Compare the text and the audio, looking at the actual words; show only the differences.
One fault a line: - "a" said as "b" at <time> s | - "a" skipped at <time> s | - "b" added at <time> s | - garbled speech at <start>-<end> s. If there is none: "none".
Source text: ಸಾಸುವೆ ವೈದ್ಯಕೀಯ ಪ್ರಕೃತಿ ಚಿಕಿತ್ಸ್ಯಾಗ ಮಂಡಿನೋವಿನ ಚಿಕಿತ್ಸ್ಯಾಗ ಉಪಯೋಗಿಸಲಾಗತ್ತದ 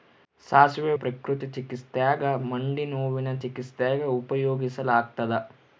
- "ವೈದ್ಯಕೀಯ" skipped at 0.9 s